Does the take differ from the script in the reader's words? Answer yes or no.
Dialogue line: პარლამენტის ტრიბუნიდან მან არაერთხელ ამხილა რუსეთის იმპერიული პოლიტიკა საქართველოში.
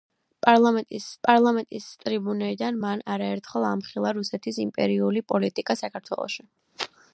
yes